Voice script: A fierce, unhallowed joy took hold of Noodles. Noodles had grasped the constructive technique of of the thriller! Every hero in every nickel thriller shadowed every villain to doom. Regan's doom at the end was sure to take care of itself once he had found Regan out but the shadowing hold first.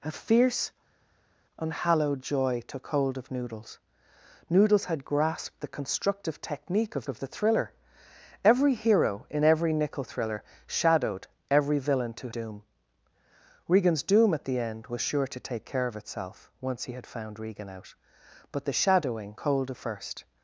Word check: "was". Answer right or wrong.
right